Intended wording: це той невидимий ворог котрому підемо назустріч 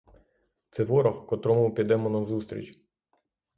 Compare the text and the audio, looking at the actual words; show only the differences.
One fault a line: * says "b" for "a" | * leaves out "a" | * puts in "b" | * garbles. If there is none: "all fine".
* leaves out "той невидимий"